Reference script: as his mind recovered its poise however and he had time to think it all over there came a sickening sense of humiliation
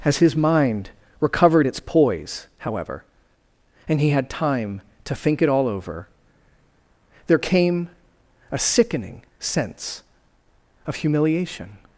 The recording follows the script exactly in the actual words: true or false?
true